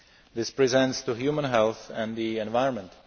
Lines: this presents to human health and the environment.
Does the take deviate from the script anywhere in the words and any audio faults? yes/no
no